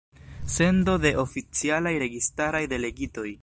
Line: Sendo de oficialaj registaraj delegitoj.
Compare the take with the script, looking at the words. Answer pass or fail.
pass